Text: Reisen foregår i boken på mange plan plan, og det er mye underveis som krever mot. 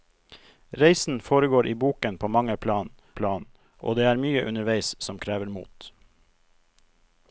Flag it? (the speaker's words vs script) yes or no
no